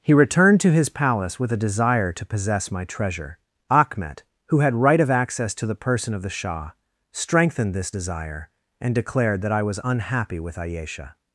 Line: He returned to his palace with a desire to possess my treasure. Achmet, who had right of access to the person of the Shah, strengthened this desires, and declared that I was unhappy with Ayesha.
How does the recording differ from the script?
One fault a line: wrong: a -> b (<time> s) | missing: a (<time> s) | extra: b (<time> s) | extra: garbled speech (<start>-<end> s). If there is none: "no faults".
wrong: desires -> desire (7.9 s)